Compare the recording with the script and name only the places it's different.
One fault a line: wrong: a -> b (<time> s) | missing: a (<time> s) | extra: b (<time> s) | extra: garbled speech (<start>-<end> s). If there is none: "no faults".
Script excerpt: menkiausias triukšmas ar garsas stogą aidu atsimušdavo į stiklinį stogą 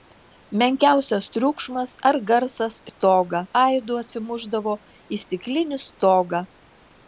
no faults